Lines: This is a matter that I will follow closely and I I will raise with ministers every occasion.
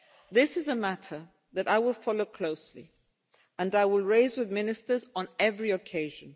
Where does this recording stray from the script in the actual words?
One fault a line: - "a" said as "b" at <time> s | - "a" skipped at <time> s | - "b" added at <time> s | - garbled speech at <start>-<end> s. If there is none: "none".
- "I" skipped at 3.9 s
- "on" added at 5.2 s